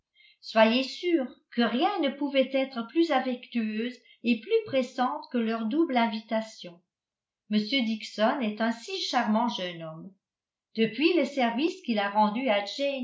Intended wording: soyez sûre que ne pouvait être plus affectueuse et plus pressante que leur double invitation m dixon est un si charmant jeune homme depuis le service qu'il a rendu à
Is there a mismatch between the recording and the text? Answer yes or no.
yes